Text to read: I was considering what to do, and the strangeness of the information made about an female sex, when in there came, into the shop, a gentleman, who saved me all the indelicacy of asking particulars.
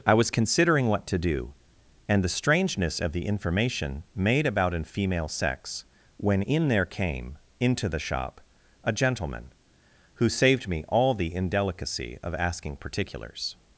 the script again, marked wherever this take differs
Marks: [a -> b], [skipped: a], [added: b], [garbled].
I was considering what to do, and the strangeness of the information made about an female sex, when in there came, into the shop, a gentleman, who saved me all the indelicacy of asking particulars.